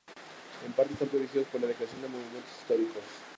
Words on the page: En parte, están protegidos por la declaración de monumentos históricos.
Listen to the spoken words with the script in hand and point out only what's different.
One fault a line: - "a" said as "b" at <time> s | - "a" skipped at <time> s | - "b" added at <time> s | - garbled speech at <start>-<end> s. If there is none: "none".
none